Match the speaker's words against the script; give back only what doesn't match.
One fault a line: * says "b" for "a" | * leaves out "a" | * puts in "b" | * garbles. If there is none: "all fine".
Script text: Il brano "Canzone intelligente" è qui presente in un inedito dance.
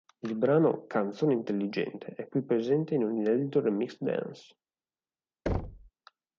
* puts in "remix"